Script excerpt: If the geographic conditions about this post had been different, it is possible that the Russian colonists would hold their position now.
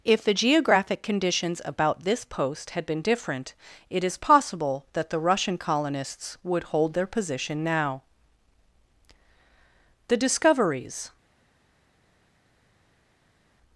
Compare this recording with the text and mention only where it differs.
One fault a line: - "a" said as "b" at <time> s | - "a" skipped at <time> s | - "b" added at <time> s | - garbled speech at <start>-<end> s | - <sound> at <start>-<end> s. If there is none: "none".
- "The discoveries" added at 10.1 s